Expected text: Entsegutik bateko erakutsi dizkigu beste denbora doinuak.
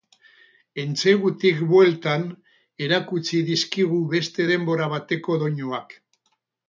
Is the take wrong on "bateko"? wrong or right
wrong